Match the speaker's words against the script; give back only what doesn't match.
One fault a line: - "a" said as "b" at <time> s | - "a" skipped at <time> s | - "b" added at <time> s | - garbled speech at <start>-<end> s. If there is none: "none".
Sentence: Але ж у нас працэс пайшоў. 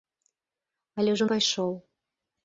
- "нас працэс" skipped at 1.3 s